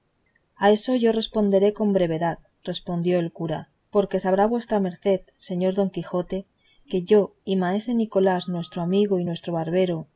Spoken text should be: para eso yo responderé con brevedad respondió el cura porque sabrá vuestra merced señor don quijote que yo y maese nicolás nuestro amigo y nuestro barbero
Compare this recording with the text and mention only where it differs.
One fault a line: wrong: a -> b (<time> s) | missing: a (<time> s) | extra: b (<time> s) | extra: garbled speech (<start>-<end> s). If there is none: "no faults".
wrong: para -> a (0.6 s)